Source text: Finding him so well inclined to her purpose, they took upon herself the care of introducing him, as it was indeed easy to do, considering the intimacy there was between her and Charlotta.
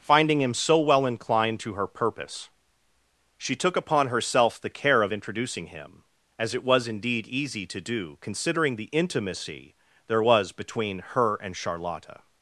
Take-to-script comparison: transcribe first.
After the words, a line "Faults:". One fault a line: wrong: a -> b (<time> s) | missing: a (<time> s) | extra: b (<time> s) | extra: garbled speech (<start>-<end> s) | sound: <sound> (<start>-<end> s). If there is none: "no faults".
Finding him so well inclined to her purpose, she took upon herself the care of introducing him, as it was indeed easy to do, considering the intimacy there was between her and Charlotta.
Faults:
wrong: they -> she (3.4 s)